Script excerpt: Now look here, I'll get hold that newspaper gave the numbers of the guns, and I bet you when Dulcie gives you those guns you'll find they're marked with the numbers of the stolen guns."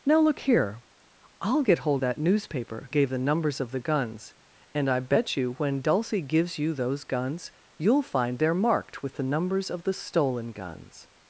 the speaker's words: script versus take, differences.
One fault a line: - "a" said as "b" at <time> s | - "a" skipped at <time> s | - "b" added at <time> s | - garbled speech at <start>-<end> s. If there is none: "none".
none